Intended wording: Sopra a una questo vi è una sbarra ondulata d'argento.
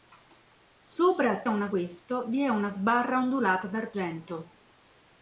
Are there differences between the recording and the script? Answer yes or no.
no